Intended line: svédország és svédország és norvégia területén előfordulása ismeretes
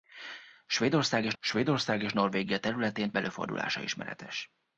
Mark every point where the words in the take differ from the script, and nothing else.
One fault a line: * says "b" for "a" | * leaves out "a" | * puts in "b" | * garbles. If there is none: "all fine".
all fine